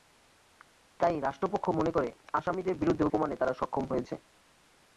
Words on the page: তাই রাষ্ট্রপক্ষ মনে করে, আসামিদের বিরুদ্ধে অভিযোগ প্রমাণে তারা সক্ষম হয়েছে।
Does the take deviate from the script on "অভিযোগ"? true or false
true